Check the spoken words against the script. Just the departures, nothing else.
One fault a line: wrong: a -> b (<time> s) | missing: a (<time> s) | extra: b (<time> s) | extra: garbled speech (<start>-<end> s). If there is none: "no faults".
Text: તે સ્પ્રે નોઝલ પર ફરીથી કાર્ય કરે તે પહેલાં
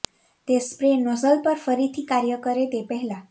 no faults